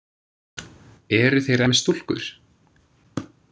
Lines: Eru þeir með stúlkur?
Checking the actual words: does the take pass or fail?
pass